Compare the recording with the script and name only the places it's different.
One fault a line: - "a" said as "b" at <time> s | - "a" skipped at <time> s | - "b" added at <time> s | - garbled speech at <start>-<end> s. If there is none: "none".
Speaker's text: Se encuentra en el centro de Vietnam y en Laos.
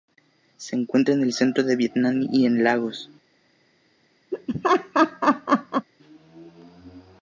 none